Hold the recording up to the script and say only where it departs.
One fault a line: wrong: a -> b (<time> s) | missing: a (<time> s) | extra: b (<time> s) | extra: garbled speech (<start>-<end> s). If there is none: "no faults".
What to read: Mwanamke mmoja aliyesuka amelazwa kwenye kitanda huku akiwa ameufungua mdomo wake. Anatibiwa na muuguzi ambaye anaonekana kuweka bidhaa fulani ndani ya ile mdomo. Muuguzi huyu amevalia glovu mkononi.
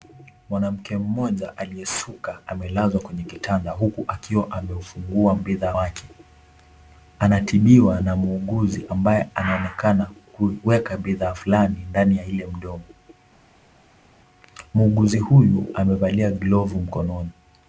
wrong: mdomo -> bidhaa (5.4 s)